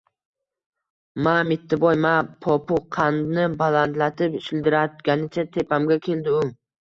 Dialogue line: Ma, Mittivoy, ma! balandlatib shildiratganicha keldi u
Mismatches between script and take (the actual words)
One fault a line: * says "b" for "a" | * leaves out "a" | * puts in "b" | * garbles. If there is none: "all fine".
* puts in "popukqandni"
* puts in "tepamga"